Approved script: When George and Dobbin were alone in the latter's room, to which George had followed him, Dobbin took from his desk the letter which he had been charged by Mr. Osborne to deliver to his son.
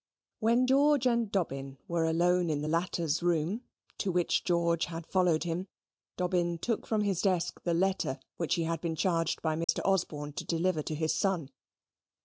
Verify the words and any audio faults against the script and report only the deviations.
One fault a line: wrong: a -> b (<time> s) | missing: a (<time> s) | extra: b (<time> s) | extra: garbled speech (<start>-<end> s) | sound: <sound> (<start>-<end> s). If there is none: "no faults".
sound: dropout (9.6-9.7 s)